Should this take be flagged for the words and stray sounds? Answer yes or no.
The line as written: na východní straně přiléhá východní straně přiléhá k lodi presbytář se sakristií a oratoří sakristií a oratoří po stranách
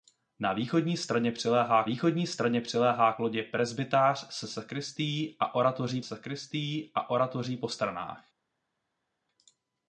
no